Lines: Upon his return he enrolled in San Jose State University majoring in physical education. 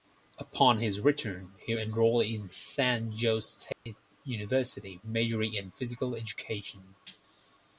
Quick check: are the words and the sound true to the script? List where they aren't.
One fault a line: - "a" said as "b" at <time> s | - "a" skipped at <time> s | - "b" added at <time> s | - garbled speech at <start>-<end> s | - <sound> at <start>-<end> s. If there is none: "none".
- dropout at 3.7-3.9 s